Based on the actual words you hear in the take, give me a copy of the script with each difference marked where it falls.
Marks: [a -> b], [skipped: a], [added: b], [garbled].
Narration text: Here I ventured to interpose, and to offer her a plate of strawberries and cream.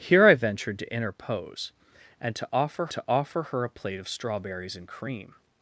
Here I ventured to interpose, and to offer [added: to offer] her a plate of strawberries and cream.